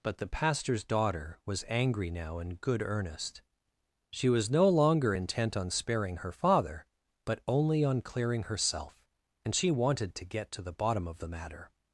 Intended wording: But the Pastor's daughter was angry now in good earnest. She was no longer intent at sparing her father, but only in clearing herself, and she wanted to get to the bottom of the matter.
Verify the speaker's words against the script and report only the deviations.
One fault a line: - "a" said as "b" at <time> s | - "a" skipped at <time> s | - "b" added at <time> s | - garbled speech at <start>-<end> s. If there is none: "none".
- "at" said as "on" at 5.6 s
- "in" said as "on" at 7.8 s